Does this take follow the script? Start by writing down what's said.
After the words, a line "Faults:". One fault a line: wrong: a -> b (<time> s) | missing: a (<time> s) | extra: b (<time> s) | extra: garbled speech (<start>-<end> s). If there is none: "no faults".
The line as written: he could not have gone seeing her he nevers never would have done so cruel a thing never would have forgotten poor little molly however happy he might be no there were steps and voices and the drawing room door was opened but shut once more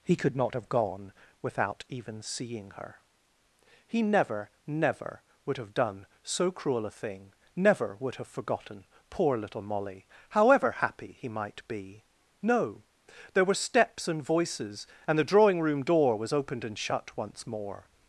he could not have gone without even seeing her he never never would have done so cruel a thing never would have forgotten poor little molly however happy he might be no there were steps and voices and the drawing room door was opened and shut once more
Faults:
extra: without even (1.4 s)
wrong: nevers -> never (4.0 s)
wrong: but -> and (16.6 s)